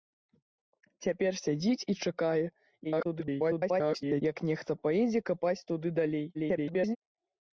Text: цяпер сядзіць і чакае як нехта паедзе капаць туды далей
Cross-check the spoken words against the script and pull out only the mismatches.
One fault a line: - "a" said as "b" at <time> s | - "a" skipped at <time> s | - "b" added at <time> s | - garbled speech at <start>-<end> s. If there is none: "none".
- garbled speech at 2.8-4.2 s
- garbled speech at 6.3-7.0 s